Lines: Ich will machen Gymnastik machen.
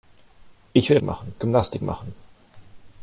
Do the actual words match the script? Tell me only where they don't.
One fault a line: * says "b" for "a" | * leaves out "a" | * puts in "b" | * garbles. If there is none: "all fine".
all fine